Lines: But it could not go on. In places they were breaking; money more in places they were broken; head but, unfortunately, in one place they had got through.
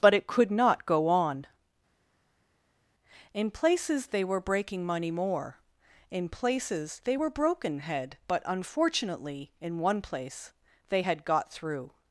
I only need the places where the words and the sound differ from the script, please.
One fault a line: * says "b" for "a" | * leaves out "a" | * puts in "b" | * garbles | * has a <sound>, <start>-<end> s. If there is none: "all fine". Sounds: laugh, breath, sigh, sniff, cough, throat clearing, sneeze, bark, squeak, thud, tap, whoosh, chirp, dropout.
all fine